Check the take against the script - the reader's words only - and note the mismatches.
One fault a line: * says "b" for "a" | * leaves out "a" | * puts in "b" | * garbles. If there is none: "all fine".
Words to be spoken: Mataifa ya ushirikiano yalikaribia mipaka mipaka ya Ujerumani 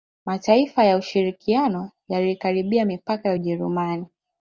* leaves out "mipaka"